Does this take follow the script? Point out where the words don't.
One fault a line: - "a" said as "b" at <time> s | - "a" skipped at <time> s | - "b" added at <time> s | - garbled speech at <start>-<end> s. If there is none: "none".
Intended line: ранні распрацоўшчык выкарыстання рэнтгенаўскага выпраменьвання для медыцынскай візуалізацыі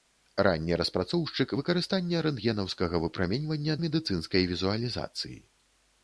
- "для" skipped at 3.8 s